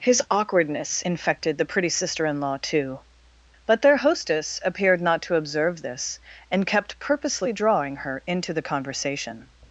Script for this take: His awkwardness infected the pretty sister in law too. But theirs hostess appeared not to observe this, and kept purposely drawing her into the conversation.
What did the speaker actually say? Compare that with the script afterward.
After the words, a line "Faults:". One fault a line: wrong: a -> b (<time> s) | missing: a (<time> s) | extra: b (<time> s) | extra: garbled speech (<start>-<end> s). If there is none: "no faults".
His awkwardness infected the pretty sister in law too. But their hostess appeared not to observe this, and kept purposely drawing her into the conversation.
Faults:
wrong: theirs -> their (3.8 s)